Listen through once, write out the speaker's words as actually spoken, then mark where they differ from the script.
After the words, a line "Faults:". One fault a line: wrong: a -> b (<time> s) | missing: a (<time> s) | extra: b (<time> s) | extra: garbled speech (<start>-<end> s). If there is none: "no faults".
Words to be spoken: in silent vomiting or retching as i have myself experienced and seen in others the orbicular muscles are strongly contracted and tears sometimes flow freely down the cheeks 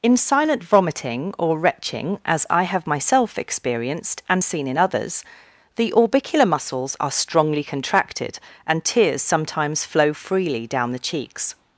in silent vomiting or retching as i have myself experienced and seen in others the orbicular muscles are strongly contracted and tears sometimes flow freely down the cheeks
Faults:
no faults